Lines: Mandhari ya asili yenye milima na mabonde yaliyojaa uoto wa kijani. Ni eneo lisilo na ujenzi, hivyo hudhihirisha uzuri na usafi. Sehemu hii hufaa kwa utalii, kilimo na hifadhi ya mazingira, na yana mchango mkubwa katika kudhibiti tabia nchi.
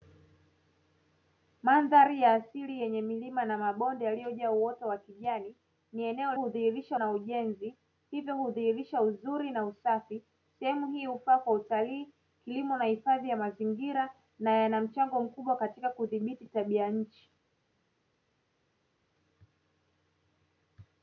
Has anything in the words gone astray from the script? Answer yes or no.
yes